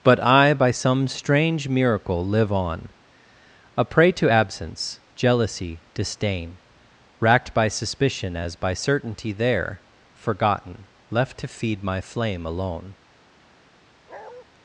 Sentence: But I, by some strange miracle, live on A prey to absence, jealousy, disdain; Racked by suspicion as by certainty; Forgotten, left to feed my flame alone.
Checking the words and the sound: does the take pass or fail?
fail